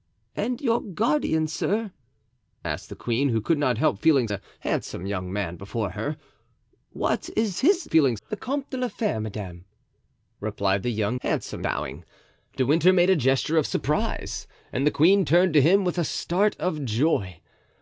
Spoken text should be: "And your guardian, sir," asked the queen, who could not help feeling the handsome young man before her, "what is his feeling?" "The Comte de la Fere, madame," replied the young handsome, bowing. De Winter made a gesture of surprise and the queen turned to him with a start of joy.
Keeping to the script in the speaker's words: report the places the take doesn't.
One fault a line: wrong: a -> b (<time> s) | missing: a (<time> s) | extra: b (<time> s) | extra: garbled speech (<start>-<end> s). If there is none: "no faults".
no faults